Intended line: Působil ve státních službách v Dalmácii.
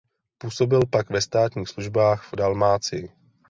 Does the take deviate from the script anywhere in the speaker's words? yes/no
yes